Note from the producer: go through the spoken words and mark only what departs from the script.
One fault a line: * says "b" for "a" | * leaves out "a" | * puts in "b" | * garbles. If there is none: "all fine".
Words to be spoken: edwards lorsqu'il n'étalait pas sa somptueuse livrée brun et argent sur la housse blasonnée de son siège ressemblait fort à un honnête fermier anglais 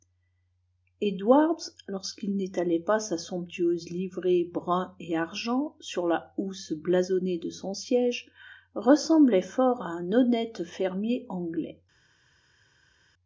all fine